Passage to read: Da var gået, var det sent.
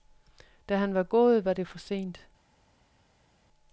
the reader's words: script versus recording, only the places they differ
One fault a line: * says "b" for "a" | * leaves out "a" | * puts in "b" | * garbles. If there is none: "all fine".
* puts in "han"
* puts in "for"